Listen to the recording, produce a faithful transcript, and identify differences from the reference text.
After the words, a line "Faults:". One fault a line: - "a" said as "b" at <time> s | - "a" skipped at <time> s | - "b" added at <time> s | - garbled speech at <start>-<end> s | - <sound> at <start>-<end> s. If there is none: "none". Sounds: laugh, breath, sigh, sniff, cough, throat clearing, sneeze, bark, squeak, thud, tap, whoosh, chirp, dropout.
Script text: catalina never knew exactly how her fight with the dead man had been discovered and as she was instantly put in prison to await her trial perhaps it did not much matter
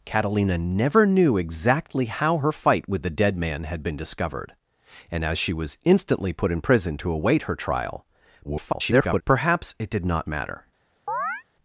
catalina never knew exactly how her fight with the dead man had been discovered and as she was instantly put in prison to await her trial [garbled] perhaps it did not matter
Faults:
- garbled speech at 8.4-9.2 s
- "much" skipped at 10.3 s
- chirp at 11.1-11.4 s